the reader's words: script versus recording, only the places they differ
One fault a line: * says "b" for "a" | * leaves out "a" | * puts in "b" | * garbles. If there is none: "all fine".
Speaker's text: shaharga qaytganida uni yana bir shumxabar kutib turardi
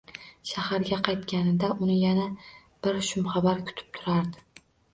all fine